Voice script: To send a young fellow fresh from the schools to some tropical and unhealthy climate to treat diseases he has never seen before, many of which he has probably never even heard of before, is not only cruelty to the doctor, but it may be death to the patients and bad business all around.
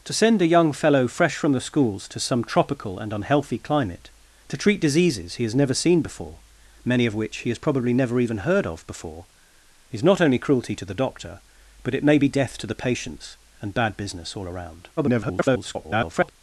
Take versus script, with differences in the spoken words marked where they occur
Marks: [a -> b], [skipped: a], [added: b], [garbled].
To send a young fellow fresh from the schools to some tropical and unhealthy climate to treat diseases he has never seen before, many of which he has probably never even heard of before, is not only cruelty to the doctor, but it may be death to the patients and bad business all around. [garbled]